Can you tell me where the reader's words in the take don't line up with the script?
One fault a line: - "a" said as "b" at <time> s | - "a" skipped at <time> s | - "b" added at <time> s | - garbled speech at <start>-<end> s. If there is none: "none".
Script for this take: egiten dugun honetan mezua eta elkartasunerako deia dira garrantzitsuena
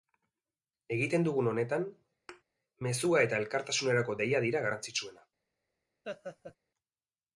none